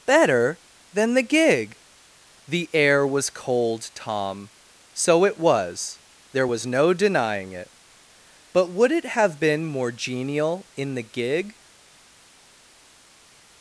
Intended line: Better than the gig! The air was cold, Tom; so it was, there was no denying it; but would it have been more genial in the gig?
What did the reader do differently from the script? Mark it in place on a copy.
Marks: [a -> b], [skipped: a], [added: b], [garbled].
Better than the gig! The air was cold, Tom; so it was, there was no denying it; but would it have been more genial in the gig?